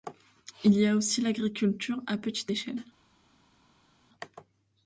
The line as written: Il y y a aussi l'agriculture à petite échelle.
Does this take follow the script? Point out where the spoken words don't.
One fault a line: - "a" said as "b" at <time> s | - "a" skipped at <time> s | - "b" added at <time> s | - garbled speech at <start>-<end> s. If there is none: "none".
- "y" skipped at 0.9 s